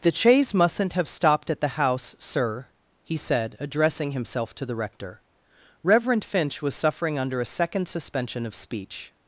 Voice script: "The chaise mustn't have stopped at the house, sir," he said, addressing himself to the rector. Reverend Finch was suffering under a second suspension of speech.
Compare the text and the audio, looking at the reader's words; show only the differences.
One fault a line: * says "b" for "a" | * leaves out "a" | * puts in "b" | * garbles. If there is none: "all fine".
all fine